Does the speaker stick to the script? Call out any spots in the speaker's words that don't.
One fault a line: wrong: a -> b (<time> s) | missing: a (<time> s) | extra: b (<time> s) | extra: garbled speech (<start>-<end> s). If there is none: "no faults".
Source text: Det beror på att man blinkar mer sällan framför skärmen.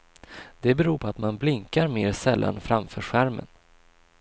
no faults